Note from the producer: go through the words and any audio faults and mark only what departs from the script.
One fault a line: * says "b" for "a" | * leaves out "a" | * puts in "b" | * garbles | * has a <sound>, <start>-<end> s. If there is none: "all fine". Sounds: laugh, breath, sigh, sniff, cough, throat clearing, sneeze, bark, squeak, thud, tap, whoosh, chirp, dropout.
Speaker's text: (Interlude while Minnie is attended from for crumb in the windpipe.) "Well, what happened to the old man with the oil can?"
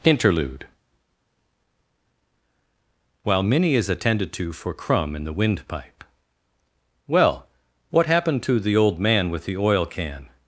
* says "to" for "from"